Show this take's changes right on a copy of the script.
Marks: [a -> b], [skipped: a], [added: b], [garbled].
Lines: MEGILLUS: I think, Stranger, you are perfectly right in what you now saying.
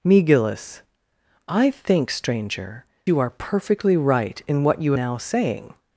MEGILLUS: I think, Stranger, you are perfectly right in what you now saying.